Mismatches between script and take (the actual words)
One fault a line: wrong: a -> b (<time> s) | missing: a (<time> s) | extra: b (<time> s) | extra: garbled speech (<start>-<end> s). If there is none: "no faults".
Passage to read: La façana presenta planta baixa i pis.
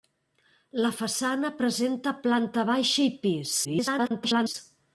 extra: garbled speech (3.6-4.6 s)